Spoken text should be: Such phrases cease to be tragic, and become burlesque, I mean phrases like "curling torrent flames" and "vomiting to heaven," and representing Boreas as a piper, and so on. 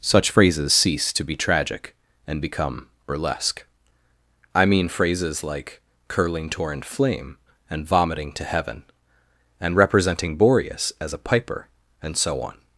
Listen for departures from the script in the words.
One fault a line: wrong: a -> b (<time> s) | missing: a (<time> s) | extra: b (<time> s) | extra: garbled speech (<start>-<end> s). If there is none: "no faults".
wrong: flames -> flame (6.8 s)